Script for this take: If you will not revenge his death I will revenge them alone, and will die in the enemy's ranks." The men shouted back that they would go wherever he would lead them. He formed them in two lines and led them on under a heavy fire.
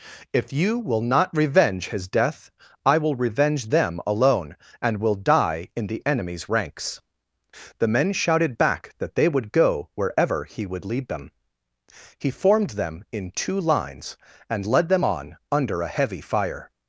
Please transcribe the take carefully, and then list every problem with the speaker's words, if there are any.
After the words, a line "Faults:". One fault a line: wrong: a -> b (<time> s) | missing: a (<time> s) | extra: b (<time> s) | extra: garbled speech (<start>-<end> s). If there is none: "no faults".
If you will not revenge his death I will revenge them alone, and will die in the enemy's ranks." The men shouted back that they would go wherever he would lead them. He formed them in two lines and led them on under a heavy fire.
Faults:
no faults